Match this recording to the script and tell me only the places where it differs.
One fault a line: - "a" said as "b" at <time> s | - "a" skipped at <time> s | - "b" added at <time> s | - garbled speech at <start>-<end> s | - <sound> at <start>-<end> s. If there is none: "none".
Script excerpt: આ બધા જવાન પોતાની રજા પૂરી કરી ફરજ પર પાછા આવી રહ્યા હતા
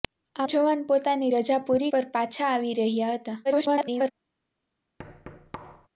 - "બધા" skipped at 0.5 s
- "કરી ફરજ" skipped at 1.9 s
- garbled speech at 3.4-4.1 s
- thud at 5.0-5.9 s